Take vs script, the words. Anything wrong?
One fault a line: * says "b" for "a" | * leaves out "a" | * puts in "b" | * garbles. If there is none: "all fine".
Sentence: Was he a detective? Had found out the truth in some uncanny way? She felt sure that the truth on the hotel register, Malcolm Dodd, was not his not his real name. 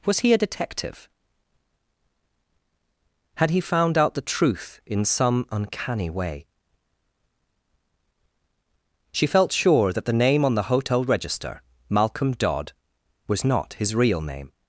* puts in "he"
* says "name" for "truth"
* leaves out "not his"